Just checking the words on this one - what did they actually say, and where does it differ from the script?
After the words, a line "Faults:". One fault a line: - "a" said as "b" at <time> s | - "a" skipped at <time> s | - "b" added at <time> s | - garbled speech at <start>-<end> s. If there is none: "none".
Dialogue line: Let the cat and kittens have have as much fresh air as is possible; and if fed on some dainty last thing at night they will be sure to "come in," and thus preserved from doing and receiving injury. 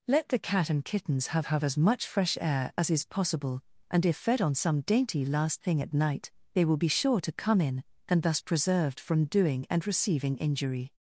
Let the cat and kittens have have as much fresh air as is possible; and if fed on some dainty last thing at night they will be sure to "come in," and thus preserved from doing and receiving injury.
Faults:
none